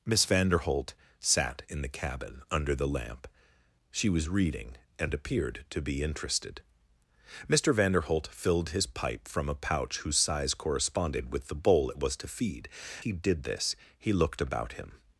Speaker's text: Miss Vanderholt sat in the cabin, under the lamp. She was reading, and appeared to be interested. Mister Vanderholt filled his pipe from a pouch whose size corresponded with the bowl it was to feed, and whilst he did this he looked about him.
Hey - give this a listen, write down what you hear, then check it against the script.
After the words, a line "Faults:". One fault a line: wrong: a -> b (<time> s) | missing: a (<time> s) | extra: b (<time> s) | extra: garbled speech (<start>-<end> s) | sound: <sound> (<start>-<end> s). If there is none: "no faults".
Miss Vanderholt sat in the cabin, under the lamp. She was reading, and appeared to be interested. Mister Vanderholt filled his pipe from a pouch whose size corresponded with the bowl it was to feed, he did this he looked about him.
Faults:
missing: and whilst (12.7 s)